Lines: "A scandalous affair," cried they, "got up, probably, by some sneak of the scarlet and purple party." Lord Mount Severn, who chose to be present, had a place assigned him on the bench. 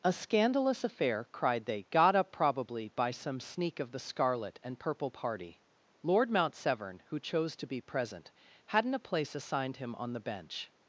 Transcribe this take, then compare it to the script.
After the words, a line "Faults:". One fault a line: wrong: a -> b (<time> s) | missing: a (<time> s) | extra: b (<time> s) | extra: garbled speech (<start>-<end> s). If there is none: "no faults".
"A scandalous affair," cried they, "got up, probably, by some sneak of the scarlet and purple party." Lord Mount Severn, who chose to be present, hadn't a place assigned him on the bench.
Faults:
wrong: had -> hadn't (8.7 s)